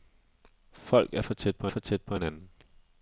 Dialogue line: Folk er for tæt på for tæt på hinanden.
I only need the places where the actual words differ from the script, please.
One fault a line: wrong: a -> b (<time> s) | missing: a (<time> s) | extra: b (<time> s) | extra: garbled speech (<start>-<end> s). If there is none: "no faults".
no faults